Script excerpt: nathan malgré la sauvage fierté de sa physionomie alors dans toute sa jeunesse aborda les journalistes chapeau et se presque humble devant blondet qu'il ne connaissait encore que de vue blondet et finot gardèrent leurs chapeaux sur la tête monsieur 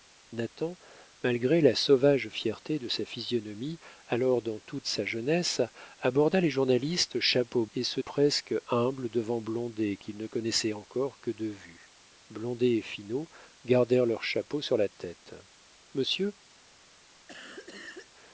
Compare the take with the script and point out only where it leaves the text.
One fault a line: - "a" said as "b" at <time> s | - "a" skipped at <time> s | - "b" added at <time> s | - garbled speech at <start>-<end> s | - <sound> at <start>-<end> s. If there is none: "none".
- cough at 17.3-18.1 s